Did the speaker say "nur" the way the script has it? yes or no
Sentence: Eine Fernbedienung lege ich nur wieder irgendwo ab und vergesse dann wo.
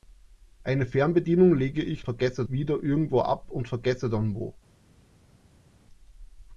no